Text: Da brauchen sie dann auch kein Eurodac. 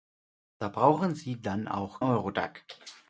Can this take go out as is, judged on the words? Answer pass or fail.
fail